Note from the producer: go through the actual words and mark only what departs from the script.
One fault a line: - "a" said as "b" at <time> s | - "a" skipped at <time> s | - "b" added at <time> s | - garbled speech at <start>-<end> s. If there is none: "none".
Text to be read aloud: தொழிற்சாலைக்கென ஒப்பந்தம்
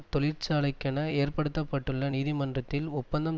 - "ஏற்படுத்த பட்டுள்ள நீதிமன்றத்தில்" added at 1.2 s